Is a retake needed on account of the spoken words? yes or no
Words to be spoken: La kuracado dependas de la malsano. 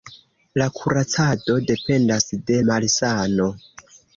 yes